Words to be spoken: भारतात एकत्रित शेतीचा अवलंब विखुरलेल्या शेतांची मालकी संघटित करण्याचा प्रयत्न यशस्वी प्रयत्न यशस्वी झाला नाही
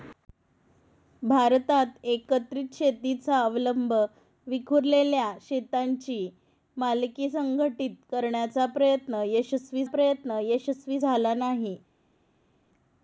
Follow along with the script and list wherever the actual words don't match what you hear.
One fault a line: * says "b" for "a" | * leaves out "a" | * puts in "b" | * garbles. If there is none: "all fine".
all fine